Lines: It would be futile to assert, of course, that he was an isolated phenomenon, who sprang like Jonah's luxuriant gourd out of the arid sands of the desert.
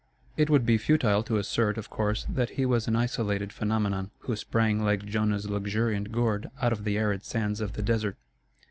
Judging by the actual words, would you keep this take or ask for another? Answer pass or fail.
pass